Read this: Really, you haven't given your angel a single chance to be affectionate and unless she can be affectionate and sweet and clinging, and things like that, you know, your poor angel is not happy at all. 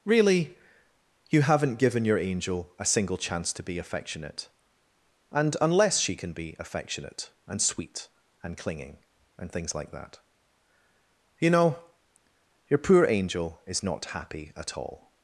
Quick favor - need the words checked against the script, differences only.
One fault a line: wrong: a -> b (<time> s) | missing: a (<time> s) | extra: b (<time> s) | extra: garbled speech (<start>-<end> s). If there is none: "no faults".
no faults